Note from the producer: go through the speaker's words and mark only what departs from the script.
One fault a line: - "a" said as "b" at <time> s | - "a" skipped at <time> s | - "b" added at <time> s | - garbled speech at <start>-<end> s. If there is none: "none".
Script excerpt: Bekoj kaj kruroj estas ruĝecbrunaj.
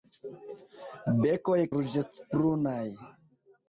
- "kaj kruroj estas" skipped at 1.6 s